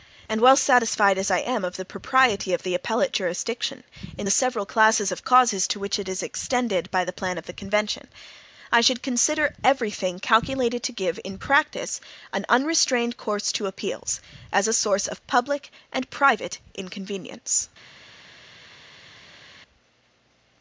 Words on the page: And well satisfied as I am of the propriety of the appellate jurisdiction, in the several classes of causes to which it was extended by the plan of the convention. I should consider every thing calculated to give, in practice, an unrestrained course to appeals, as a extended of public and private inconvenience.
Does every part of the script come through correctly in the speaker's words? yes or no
no